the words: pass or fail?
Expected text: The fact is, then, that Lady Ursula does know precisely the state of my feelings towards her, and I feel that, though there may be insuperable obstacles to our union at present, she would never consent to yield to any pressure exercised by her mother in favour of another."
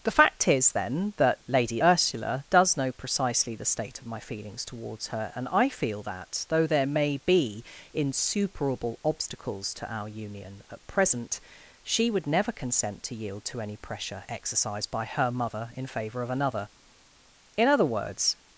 fail